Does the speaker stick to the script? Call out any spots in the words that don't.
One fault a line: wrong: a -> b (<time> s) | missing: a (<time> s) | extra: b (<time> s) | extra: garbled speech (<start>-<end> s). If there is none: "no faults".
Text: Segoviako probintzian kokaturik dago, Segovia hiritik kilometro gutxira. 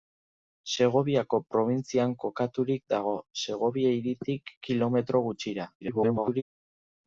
extra: garbled speech (5.8-6.4 s)